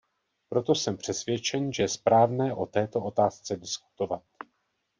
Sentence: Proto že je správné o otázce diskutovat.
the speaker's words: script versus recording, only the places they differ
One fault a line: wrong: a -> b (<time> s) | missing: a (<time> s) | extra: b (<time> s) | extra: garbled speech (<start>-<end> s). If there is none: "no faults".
extra: jsem přesvědčen (0.8 s)
extra: této (2.7 s)